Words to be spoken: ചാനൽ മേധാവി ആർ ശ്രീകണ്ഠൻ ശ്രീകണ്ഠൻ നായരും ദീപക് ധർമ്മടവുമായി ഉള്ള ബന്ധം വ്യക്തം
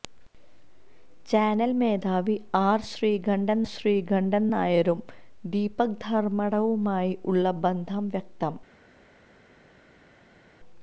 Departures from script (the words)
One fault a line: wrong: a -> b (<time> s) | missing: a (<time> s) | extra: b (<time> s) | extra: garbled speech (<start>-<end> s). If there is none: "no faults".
no faults